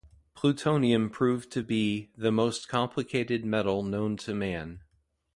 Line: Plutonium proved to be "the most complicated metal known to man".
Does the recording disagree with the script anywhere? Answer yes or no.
no